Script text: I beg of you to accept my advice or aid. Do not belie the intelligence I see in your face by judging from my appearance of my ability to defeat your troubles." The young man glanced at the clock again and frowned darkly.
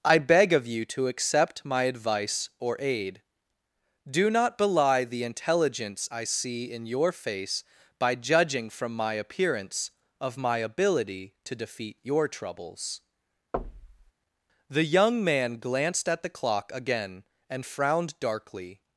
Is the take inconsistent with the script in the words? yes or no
no